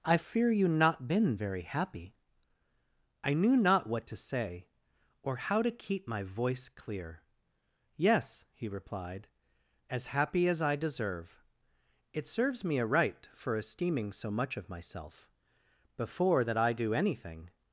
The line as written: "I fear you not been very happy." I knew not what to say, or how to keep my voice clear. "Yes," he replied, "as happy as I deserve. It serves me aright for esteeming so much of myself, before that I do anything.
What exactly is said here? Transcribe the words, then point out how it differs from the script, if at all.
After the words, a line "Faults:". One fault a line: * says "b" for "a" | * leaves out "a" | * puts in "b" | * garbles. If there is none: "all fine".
"I fear you not been very happy." I knew not what to say, or how to keep my voice clear. "Yes," he replied, "as happy as I deserve. It serves me aright for esteeming so much of myself, before that I do anything.
Faults:
all fine